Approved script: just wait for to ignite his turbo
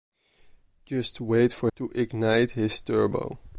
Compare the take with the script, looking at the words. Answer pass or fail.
pass